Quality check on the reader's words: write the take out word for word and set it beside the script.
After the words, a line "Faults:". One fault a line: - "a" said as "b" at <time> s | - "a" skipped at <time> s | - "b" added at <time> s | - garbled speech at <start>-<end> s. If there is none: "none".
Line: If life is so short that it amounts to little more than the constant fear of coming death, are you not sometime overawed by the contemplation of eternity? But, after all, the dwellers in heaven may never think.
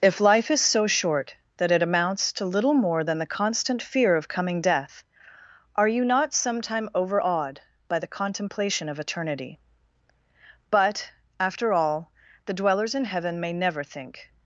If life is so short that it amounts to little more than the constant fear of coming death, are you not sometime overawed by the contemplation of eternity? But, after all, the dwellers in heaven may never think.
Faults:
none